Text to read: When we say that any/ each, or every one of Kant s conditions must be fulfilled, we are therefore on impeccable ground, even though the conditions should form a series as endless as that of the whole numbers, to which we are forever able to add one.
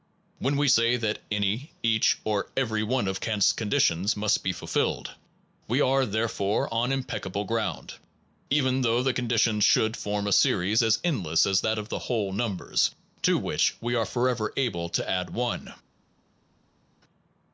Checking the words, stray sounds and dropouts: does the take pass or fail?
pass